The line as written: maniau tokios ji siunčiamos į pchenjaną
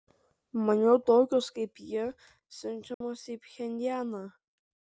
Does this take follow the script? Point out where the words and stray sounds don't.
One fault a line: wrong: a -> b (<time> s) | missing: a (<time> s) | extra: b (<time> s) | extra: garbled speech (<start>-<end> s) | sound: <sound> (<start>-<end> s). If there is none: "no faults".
extra: kaip (1.5 s)
sound: dropout (2.9-3.0 s)